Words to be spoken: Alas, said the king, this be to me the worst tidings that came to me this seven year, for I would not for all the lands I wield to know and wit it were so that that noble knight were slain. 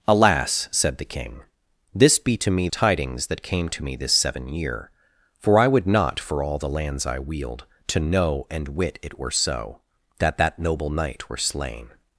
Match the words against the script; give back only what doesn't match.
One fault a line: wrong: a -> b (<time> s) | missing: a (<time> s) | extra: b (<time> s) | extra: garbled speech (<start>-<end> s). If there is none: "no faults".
missing: the worst (2.7 s)